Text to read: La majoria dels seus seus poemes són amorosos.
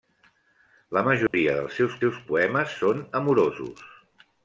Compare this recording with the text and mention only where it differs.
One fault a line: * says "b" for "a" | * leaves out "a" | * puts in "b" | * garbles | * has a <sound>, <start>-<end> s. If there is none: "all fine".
* has a dropout, 1.3-1.3 s